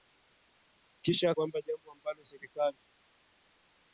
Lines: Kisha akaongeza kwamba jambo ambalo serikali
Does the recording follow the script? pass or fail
fail